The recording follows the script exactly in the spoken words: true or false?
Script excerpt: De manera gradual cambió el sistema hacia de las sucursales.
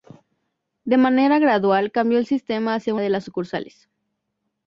true